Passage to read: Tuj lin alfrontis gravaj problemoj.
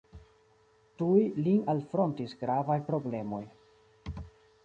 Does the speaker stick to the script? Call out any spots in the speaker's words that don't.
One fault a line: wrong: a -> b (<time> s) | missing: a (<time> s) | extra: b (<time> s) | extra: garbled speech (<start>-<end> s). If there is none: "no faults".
no faults